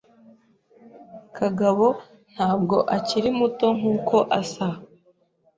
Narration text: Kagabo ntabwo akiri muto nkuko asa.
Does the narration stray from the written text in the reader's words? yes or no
no